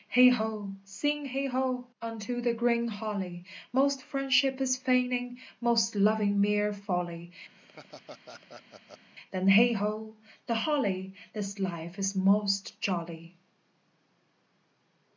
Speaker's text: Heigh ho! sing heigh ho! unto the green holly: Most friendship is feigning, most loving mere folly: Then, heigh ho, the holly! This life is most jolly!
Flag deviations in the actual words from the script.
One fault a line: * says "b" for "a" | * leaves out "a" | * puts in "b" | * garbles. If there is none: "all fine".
all fine